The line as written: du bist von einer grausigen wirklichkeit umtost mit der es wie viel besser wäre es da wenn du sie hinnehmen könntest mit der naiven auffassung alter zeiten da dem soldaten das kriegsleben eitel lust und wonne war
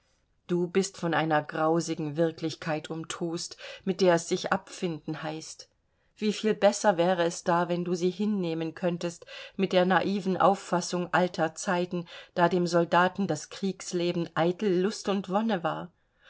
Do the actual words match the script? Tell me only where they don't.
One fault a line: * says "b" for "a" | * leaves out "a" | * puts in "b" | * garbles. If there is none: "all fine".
* puts in "sich abfinden heißt"